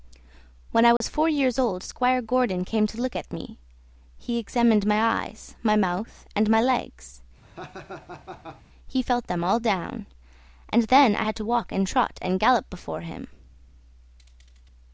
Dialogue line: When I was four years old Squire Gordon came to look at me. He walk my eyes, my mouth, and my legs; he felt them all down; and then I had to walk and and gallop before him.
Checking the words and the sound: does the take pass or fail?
fail